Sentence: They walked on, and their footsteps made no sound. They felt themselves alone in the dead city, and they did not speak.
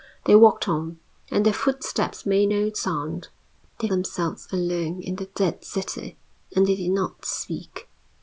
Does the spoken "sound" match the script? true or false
true